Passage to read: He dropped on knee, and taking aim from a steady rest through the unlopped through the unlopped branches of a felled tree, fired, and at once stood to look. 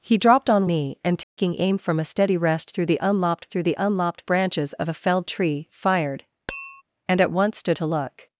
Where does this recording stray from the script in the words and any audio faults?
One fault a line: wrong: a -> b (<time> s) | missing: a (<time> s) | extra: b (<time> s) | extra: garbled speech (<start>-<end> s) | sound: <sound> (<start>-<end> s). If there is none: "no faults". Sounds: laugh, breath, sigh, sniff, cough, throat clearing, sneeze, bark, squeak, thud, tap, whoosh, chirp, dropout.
sound: dropout (1.2-1.4 s)
sound: tap (6.5-6.8 s)